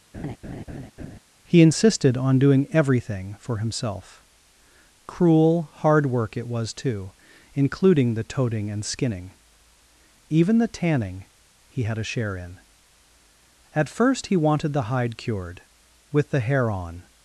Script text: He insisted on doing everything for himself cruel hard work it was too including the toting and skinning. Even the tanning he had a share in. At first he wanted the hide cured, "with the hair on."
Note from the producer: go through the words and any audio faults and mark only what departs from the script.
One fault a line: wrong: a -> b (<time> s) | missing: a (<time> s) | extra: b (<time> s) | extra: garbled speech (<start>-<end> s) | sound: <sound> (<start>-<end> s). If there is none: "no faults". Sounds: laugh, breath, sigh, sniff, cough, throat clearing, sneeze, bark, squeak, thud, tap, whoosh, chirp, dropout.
sound: laugh (0.1-1.2 s)